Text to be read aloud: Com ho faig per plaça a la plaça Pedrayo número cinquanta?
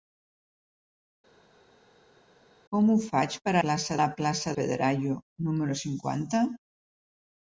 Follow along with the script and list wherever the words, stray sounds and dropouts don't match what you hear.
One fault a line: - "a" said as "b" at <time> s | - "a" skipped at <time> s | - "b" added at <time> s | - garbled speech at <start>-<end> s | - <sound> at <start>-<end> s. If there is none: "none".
none